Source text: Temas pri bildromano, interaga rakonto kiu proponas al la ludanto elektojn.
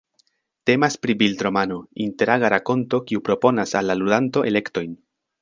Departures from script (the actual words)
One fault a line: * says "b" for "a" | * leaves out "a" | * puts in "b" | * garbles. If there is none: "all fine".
all fine